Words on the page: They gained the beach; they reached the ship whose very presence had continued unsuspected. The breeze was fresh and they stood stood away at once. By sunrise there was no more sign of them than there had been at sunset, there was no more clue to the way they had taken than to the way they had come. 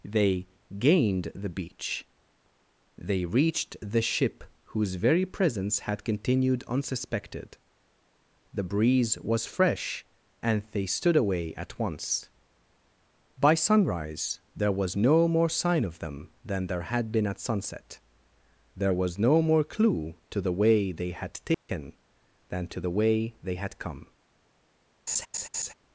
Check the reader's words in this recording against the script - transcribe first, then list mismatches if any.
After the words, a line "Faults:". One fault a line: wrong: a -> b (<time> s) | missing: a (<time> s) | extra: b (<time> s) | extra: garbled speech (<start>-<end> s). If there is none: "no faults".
They gained the beach; they reached the ship whose very presence had continued unsuspected. The breeze was fresh and they stood away at once. By sunrise there was no more sign of them than there had been at sunset, there was no more clue to the way they had taken than to the way they had come.
Faults:
missing: stood (11.2 s)